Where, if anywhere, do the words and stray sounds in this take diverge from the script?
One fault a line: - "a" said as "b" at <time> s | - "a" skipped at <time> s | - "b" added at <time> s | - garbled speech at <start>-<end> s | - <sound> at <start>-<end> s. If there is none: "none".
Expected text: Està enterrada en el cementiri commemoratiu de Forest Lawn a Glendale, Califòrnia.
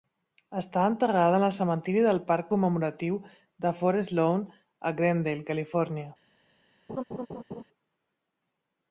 - "del parc" added at 2.0 s
- laugh at 6.9-7.6 s